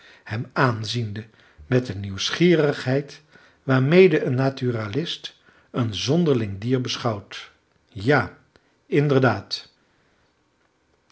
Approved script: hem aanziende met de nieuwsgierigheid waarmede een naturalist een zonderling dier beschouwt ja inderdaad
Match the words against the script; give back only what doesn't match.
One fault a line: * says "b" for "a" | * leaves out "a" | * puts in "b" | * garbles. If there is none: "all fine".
all fine